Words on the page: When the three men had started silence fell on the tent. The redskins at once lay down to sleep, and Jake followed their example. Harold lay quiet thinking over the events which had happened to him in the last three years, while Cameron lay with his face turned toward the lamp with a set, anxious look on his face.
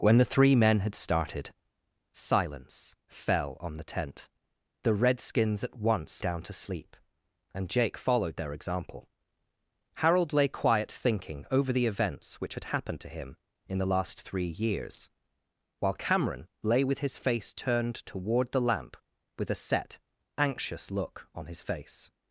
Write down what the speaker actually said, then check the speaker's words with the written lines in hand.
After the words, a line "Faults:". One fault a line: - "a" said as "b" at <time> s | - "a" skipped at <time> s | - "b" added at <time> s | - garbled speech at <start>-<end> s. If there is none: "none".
When the three men had started silence fell on the tent. The redskins at once down to sleep, and Jake followed their example. Harold lay quiet thinking over the events which had happened to him in the last three years, while Cameron lay with his face turned toward the lamp with a set, anxious look on his face.
Faults:
- "lay" skipped at 6.2 s